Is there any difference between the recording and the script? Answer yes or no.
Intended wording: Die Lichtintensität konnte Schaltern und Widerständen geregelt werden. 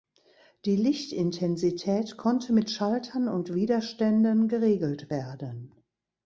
yes